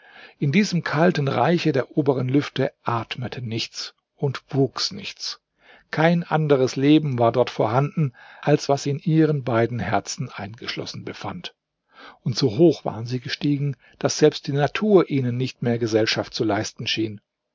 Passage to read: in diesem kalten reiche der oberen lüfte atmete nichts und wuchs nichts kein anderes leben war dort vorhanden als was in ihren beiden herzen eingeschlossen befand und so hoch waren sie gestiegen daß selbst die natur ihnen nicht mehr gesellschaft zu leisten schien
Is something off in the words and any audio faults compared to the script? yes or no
no